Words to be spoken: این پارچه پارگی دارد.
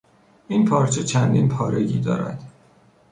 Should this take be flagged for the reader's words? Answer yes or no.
yes